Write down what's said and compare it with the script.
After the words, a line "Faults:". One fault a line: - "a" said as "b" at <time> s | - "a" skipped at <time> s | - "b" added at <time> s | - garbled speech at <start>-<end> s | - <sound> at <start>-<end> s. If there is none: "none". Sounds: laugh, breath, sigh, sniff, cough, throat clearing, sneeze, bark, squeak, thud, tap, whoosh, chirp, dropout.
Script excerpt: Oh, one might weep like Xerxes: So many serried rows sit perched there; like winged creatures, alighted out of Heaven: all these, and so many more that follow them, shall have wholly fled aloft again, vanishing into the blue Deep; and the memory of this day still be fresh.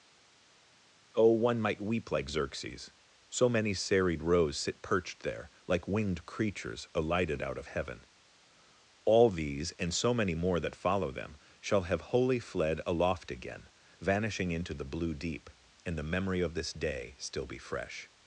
Oh, one might weep like Xerxes: So many serried rows sit perched there; like winged creatures, alighted out of Heaven: all these, and so many more that follow them, shall have wholly fled aloft again, vanishing into the blue Deep; and the memory of this day still be fresh.
Faults:
none